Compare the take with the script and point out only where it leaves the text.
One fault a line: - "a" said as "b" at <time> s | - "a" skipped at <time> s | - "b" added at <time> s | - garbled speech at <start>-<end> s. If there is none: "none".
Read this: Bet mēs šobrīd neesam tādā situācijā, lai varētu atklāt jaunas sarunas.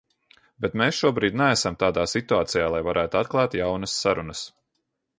none